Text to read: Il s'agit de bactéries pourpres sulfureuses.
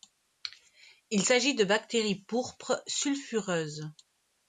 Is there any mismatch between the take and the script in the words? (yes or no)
no